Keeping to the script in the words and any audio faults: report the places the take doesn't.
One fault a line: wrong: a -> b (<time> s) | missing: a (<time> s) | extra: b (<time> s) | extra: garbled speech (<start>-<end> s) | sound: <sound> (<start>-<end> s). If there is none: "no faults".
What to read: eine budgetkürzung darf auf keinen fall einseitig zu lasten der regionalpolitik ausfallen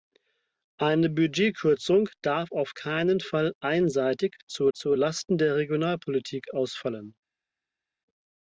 extra: zu (4.7 s)